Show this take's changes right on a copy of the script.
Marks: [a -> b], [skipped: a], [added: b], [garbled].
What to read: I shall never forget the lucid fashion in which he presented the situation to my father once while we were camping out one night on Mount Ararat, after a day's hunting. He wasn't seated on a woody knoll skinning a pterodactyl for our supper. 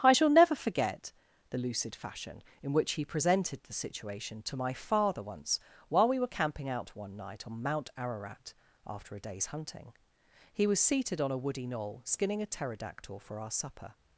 I shall never forget the lucid fashion in which he presented the situation to my father once while we were camping out one night on Mount Ararat, after a day's hunting. He [wasn't -> was] seated on a woody knoll skinning a pterodactyl for our supper.